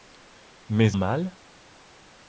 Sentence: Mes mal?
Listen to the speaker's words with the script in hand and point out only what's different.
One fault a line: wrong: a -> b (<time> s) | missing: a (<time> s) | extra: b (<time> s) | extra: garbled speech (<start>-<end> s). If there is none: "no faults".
no faults